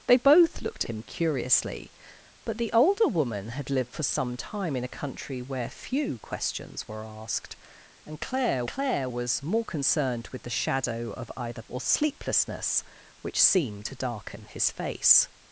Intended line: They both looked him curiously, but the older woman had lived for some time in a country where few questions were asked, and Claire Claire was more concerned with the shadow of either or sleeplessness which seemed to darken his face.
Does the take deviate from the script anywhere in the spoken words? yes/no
no